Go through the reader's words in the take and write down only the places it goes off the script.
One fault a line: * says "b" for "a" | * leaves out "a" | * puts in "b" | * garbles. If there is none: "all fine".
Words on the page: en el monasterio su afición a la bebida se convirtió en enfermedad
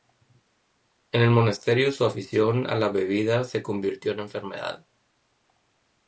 all fine